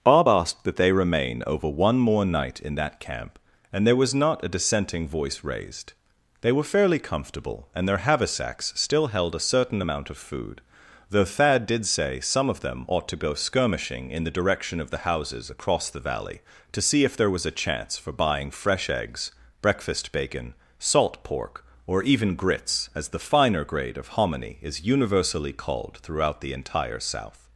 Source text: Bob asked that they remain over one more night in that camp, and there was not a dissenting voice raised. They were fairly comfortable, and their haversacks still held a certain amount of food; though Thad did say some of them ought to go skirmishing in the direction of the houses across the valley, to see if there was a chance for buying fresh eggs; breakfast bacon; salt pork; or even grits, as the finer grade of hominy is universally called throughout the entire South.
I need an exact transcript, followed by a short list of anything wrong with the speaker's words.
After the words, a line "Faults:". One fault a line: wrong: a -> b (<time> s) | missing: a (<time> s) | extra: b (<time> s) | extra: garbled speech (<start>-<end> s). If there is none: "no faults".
Bob asked that they remain over one more night in that camp, and there was not a dissenting voice raised. They were fairly comfortable, and their haversacks still held a certain amount of food; though Thad did say some of them ought to go skirmishing in the direction of the houses across the valley, to see if there was a chance for buying fresh eggs; breakfast bacon; salt pork; or even grits, as the finer grade of hominy is universally called throughout the entire South.
Faults:
no faults